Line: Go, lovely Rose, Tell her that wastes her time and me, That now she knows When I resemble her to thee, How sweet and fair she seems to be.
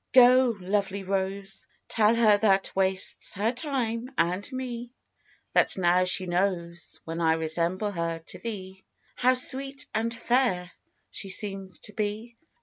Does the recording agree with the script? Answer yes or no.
yes